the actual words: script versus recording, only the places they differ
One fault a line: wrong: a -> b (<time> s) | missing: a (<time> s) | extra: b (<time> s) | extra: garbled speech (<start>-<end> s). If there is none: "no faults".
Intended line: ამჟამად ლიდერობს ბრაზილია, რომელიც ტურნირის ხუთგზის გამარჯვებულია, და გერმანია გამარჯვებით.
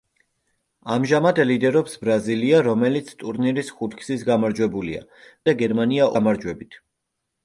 no faults